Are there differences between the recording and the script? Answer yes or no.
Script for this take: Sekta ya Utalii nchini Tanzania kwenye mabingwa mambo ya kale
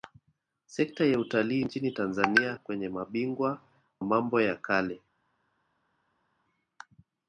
no